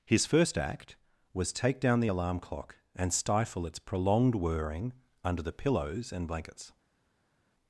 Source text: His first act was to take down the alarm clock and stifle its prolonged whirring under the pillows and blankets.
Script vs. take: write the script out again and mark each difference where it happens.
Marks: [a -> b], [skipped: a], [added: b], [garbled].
His first act was [skipped: to] take down the alarm clock and stifle its prolonged whirring under the pillows and blankets.